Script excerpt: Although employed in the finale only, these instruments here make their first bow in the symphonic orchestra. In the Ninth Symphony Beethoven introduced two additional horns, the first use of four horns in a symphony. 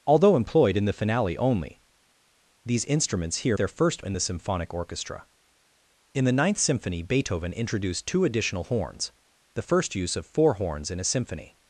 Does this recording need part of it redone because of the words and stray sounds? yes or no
yes